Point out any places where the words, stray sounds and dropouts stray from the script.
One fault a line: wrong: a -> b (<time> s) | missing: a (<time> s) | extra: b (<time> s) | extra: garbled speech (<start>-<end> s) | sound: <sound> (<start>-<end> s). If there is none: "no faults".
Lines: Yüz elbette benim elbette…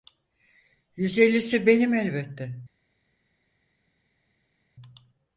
wrong: elbette -> ellisi (1.2 s)